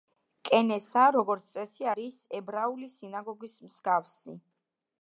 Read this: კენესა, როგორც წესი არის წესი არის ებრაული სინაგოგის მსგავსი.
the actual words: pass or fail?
fail